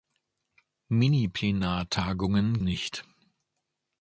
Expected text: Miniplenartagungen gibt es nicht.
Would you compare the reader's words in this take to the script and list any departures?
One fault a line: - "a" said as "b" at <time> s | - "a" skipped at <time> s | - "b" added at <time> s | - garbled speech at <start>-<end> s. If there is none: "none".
- "gibt es" skipped at 2.6 s